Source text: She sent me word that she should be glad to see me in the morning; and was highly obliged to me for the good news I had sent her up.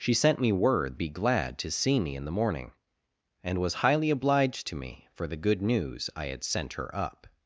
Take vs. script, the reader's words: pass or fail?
fail